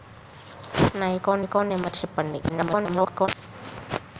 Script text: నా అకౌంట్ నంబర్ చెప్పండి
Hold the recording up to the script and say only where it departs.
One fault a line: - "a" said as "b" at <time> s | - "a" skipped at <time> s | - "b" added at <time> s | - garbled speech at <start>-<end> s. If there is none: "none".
- "అకౌంట్" added at 1.4 s
- garbled speech at 2.5-3.3 s